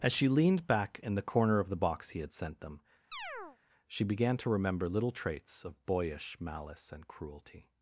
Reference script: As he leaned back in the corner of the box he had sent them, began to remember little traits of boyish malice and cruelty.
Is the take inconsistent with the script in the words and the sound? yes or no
yes